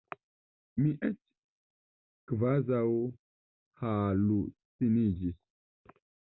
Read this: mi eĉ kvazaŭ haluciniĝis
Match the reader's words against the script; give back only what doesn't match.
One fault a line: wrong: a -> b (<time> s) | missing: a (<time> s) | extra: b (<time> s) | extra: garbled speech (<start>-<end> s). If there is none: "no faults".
no faults